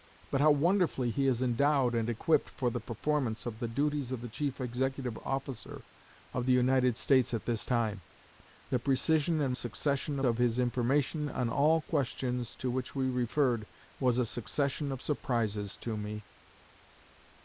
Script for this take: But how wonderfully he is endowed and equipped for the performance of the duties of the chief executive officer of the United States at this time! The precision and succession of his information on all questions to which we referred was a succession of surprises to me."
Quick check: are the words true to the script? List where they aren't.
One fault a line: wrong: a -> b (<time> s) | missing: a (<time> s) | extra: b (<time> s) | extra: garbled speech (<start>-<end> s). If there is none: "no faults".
no faults